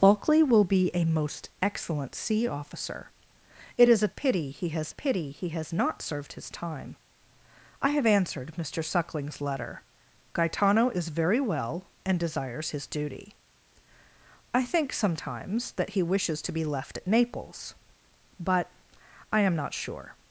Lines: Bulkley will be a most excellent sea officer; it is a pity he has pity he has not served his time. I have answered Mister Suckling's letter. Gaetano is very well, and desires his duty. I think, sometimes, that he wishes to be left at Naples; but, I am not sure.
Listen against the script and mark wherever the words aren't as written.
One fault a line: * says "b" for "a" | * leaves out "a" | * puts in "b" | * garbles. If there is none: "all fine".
all fine